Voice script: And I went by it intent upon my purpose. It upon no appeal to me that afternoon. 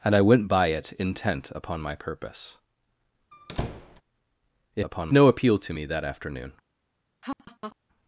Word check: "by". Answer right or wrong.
right